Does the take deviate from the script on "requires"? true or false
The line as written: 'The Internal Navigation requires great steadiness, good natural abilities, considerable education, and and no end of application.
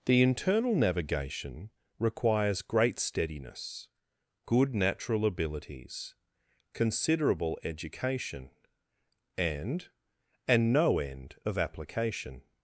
false